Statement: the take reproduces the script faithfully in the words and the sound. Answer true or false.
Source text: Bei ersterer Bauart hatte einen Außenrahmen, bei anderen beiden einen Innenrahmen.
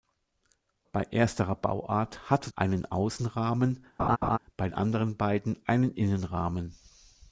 false